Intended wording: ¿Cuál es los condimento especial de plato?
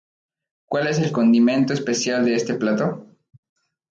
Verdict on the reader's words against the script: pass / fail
fail